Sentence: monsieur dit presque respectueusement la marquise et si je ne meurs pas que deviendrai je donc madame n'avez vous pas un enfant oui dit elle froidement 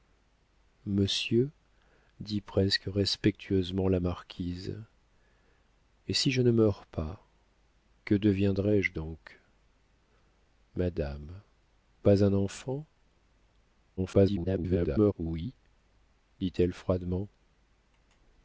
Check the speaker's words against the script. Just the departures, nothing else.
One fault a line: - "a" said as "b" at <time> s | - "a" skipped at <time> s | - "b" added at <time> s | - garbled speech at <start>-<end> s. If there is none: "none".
- "n'avez vous" skipped at 11.3 s
- garbled speech at 14.0-15.1 s